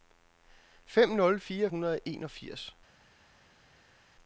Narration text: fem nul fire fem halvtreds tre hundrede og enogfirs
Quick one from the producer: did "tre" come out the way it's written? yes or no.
no